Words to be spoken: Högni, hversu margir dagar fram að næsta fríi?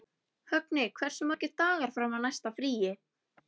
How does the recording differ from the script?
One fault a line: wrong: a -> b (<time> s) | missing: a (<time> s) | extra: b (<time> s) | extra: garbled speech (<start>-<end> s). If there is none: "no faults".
no faults